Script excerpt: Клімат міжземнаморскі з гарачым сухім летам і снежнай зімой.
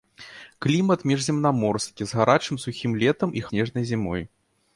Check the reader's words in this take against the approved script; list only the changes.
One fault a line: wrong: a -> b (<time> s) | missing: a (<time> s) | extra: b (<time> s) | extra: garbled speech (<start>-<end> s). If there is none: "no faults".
no faults